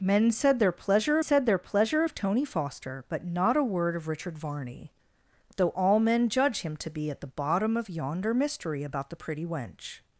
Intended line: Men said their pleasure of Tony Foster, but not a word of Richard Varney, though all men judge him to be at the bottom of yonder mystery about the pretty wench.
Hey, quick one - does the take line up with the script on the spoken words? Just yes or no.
no